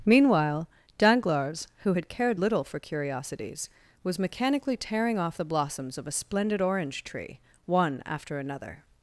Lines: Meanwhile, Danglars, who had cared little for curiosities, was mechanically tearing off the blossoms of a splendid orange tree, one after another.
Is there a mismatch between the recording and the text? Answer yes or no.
no